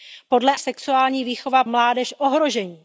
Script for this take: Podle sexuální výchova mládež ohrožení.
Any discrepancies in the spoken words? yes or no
no